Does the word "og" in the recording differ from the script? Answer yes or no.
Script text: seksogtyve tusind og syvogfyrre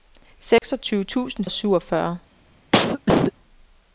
no